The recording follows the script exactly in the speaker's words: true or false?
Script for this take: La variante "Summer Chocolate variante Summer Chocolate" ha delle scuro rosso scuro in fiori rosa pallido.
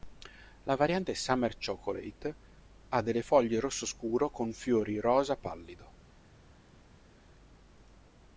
false